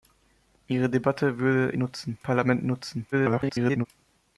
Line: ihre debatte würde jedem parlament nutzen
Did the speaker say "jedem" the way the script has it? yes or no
no